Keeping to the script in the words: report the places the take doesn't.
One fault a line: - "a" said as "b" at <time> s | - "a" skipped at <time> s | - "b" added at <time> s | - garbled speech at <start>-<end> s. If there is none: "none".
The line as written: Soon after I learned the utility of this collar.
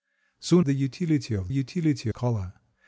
- "after I learned" skipped at 0.7 s
- "this" said as "utility" at 1.5 s